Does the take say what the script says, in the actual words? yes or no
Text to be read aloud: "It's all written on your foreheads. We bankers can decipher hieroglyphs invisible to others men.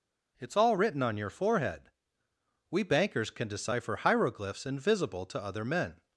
no